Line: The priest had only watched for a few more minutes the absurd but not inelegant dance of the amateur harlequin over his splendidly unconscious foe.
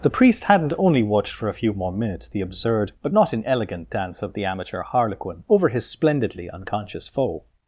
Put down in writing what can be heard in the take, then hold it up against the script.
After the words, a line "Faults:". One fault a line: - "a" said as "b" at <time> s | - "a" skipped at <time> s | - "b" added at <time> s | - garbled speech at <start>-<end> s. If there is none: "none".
The priest hadn't only watched for a few more minutes the absurd but not inelegant dance of the amateur harlequin over his splendidly unconscious foe.
Faults:
- "had" said as "hadn't" at 0.5 s